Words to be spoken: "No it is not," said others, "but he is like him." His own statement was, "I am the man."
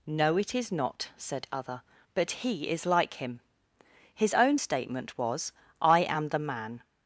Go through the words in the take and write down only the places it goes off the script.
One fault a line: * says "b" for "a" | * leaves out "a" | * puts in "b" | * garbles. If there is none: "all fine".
* says "other" for "others"